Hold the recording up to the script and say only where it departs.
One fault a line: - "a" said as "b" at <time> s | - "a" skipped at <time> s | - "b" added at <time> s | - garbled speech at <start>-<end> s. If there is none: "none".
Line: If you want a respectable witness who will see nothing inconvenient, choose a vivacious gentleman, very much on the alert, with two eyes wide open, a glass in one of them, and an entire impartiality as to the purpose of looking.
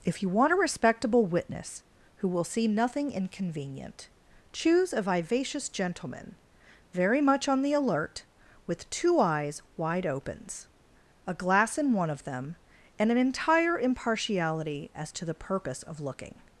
- "open" said as "opens" at 10.1 s